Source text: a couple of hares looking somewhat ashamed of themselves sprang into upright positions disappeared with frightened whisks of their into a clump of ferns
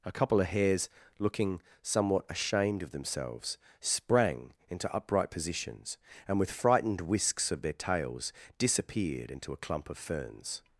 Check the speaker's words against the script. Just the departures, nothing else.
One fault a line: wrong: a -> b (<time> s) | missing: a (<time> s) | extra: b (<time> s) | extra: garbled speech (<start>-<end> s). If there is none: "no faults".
wrong: disappeared -> and (6.3 s)
extra: tails disappeared (7.7 s)